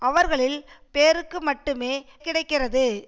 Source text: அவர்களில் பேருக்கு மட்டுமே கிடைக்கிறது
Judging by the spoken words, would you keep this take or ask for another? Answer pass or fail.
pass